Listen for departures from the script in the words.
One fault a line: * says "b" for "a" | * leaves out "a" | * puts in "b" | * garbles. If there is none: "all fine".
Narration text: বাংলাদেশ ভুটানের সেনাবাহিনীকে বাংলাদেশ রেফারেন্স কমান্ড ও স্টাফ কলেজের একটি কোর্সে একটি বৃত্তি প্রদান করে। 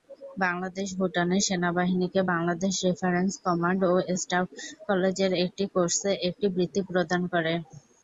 all fine